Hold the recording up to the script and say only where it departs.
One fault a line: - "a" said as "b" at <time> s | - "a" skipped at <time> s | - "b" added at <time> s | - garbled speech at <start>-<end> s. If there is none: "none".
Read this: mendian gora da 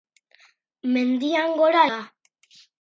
none